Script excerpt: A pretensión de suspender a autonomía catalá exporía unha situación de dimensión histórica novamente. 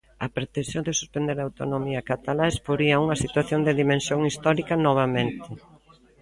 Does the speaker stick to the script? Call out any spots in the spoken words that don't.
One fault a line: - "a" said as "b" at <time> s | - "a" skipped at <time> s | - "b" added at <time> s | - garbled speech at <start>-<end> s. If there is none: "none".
none